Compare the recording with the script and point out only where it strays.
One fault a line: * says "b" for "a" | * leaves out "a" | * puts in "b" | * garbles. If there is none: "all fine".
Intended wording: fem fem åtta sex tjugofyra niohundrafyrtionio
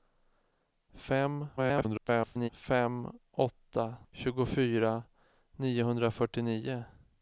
* garbles
* leaves out "sex"